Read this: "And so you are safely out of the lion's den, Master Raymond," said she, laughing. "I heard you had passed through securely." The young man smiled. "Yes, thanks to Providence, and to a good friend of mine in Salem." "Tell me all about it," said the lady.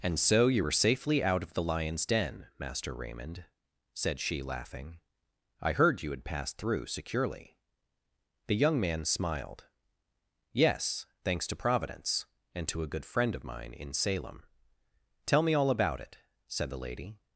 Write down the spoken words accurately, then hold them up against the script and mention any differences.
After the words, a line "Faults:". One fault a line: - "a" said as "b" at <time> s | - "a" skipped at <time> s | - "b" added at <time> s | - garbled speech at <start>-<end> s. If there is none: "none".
"And so you were safely out of the lion's den, Master Raymond," said she, laughing. "I heard you had passed through securely." The young man smiled. "Yes, thanks to Providence, and to a good friend of mine in Salem." "Tell me all about it," said the lady.
Faults:
- "are" said as "were" at 0.6 s